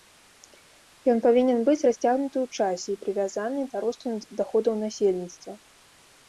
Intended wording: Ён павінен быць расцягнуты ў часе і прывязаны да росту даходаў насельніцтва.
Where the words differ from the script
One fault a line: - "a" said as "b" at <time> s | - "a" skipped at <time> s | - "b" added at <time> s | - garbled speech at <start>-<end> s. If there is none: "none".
none